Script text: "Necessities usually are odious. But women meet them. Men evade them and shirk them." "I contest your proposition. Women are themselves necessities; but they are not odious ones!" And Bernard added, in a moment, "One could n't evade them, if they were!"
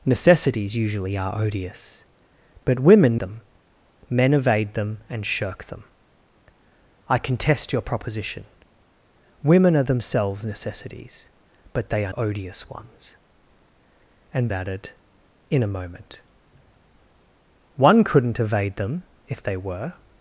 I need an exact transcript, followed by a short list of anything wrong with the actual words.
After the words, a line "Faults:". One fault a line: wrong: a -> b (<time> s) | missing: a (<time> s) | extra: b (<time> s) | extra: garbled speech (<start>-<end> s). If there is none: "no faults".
"Necessities usually are odious. But women them. Men evade them and shirk them." "I contest your proposition. Women are themselves necessities; but they are odious ones!" And Added, in a moment, "One could n't evade them, if they were!"
Faults:
missing: meet (3.2 s)
missing: not (12.1 s)
missing: Bernard (14.5 s)